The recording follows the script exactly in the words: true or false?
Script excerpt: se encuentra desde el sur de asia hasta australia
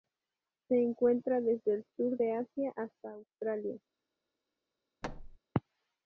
true